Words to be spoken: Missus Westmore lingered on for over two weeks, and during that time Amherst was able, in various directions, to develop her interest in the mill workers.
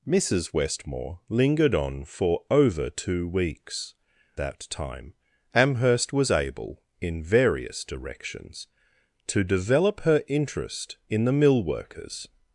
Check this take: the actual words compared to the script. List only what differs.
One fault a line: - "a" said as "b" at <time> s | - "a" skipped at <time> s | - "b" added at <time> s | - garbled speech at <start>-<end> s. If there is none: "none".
- "and during" skipped at 4.0 s